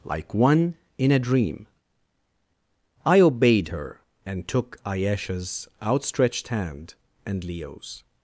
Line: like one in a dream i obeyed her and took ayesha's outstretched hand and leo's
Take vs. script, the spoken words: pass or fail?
pass